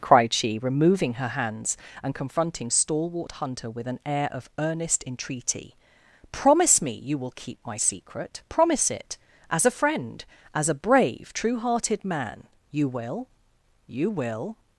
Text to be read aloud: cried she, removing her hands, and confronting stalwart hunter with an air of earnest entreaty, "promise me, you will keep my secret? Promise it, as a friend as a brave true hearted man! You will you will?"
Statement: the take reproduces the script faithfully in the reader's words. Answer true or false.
true